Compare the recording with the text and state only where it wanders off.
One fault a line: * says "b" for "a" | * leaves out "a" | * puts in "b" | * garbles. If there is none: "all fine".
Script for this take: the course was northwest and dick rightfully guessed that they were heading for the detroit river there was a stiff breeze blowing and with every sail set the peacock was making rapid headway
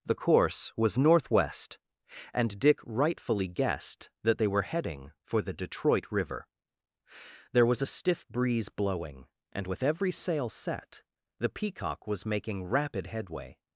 all fine